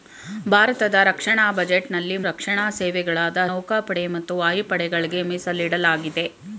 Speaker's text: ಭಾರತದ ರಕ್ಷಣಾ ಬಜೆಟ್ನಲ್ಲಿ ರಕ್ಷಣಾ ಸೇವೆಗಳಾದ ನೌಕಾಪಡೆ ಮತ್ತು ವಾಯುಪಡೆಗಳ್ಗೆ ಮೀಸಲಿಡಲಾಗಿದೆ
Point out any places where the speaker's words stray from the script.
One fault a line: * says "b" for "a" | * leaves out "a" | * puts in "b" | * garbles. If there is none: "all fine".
all fine